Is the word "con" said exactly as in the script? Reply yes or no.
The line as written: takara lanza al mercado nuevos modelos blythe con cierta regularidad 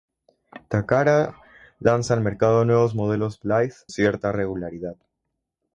no